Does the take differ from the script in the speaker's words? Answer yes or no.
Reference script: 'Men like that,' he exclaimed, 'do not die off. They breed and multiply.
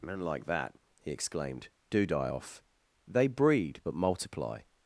yes